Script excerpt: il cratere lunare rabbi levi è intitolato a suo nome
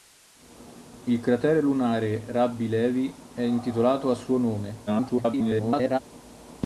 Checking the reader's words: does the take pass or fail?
fail